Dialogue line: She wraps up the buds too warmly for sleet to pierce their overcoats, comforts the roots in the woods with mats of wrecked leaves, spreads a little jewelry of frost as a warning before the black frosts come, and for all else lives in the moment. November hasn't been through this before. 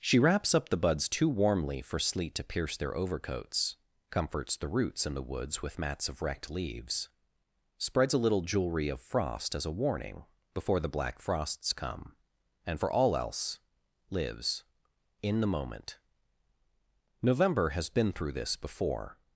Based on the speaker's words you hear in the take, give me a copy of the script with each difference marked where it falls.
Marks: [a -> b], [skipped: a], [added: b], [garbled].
She wraps up the buds too warmly for sleet to pierce their overcoats, comforts the roots in the woods with mats of wrecked leaves, spreads a little jewelry of frost as a warning before the black frosts come, and for all else lives in the moment. November [hasn't -> has] been through this before.